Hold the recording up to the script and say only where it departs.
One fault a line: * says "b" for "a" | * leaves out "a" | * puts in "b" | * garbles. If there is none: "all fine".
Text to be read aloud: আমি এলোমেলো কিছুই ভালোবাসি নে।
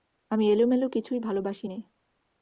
all fine